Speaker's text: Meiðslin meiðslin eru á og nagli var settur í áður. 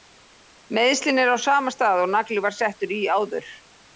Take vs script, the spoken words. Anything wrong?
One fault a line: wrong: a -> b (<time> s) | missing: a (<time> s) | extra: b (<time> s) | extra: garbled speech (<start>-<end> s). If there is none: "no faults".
missing: meiðslin (1.2 s)
extra: sama stað (1.4 s)